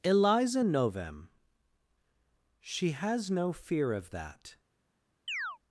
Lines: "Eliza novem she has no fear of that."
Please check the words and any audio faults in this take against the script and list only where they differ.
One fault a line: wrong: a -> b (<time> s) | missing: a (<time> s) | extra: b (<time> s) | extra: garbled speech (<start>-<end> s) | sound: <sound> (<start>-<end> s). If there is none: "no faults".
sound: chirp (5.3-5.6 s)